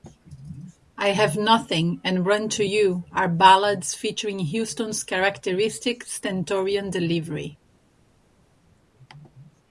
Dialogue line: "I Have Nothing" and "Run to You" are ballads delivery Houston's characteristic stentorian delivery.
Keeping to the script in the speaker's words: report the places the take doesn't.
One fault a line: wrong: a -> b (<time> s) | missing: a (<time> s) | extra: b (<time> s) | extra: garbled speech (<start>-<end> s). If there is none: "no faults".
wrong: delivery -> featuring (3.9 s)